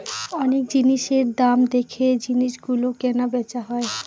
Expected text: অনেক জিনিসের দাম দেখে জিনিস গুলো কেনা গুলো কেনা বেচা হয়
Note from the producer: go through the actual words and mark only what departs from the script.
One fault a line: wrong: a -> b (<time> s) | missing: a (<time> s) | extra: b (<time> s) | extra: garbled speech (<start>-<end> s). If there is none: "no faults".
missing: গুলো কেনা (3.3 s)